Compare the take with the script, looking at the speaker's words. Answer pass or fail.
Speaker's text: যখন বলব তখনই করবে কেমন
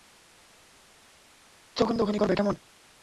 fail